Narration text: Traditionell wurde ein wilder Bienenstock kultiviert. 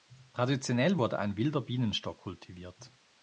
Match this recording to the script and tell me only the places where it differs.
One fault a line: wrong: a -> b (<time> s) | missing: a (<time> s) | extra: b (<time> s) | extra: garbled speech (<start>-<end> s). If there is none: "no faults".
no faults